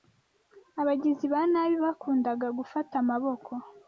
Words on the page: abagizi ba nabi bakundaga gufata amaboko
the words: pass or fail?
pass